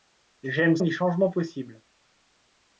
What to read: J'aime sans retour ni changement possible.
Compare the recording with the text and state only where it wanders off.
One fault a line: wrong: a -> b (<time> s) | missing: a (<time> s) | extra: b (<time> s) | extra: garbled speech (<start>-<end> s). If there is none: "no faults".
missing: sans retour (0.8 s)